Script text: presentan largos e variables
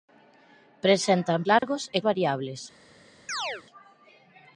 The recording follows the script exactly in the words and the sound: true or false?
false